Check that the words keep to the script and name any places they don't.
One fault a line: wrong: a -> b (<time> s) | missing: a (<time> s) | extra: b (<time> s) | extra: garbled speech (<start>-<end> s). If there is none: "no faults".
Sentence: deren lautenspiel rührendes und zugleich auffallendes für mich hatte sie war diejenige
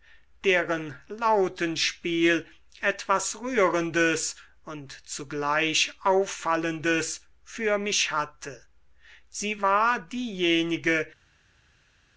extra: etwas (2.8 s)